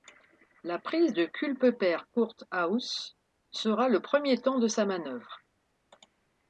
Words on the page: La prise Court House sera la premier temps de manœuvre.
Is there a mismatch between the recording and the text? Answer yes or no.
yes